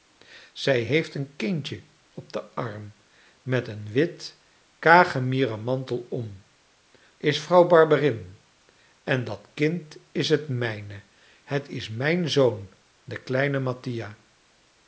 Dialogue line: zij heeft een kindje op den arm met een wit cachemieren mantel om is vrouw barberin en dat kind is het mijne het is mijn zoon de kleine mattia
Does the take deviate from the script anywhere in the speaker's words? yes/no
no